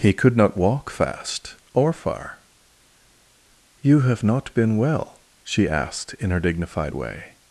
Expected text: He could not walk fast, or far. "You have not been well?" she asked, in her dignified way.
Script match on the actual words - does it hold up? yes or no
yes